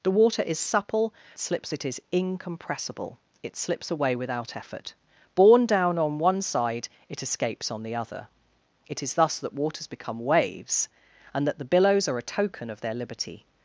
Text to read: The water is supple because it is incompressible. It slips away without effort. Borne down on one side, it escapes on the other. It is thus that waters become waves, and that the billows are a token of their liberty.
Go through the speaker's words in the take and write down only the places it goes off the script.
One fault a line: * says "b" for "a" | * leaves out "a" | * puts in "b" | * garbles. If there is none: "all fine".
* says "slips" for "because"